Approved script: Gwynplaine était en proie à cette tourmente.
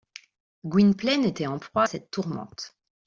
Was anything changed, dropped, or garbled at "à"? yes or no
yes